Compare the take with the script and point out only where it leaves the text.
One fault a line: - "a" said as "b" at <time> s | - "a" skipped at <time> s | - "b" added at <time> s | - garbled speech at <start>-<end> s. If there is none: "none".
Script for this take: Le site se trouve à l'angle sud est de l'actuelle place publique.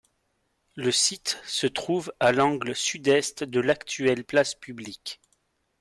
none